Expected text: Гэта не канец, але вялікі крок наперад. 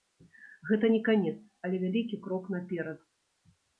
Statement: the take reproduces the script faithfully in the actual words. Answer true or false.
true